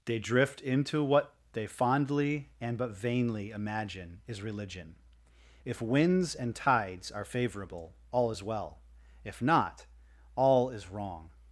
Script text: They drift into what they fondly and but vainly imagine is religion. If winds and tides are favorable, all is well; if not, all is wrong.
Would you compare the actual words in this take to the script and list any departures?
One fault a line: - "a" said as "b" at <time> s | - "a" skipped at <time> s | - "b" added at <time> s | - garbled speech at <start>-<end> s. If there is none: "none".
none